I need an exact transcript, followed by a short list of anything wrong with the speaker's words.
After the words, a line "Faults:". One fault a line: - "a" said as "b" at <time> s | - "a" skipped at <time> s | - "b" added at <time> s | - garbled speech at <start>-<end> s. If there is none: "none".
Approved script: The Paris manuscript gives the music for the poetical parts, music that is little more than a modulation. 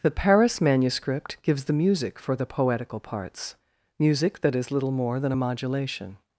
The Paris manuscript gives the music for the poetical parts, music that is little more than a modulation.
Faults:
none